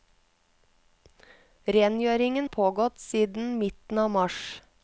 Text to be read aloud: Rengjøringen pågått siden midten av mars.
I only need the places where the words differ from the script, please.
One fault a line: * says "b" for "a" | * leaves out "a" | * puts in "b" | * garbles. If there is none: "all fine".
all fine